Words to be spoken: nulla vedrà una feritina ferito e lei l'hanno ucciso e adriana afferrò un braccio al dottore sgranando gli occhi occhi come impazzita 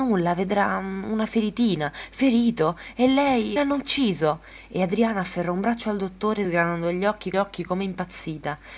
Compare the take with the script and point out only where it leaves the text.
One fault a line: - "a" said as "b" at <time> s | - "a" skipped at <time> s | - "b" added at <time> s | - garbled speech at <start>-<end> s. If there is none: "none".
none